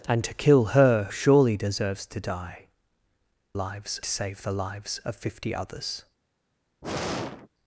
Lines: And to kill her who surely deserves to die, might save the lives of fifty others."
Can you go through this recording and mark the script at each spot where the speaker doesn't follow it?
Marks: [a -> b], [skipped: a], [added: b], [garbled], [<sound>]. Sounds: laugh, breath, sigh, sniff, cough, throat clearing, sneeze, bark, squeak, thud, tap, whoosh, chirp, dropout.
And to kill her [skipped: who] surely deserves to die, [might -> lives] save the lives of fifty others." [sigh]